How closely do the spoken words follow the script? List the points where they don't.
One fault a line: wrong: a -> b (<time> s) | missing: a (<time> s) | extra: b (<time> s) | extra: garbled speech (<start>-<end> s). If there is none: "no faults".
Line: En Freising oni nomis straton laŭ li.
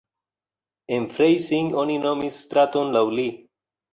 no faults